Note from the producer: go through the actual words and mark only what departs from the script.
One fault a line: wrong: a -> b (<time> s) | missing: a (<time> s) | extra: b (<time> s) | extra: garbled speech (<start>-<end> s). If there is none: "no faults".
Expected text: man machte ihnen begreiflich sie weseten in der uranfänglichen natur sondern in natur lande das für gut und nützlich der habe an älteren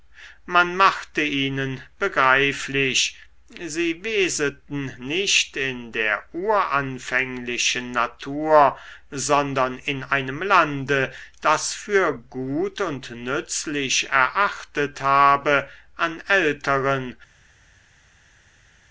extra: nicht (5.0 s)
wrong: natur -> einem (10.0 s)
wrong: der -> erachtet (14.1 s)